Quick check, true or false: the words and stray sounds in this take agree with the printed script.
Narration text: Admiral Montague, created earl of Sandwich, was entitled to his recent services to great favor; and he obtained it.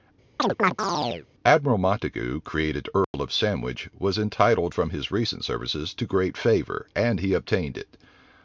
false